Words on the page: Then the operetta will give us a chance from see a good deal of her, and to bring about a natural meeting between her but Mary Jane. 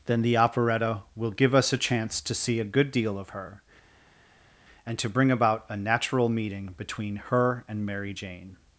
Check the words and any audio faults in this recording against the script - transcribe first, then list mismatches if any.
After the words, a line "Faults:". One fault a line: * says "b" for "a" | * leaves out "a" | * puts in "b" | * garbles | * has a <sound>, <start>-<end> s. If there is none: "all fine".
Then the operetta will give us a chance to see a good deal of her, and to bring about a natural meeting between her and Mary Jane.
Faults:
* says "to" for "from"
* says "and" for "but"